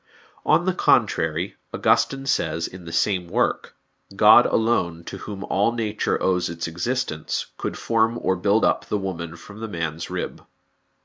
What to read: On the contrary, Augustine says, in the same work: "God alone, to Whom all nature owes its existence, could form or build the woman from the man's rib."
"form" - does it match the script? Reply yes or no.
yes